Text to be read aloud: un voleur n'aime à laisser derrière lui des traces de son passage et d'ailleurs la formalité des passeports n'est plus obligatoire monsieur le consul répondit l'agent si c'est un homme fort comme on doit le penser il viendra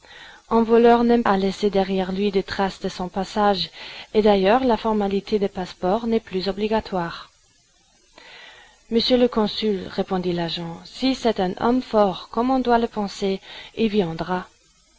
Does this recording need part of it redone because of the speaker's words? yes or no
no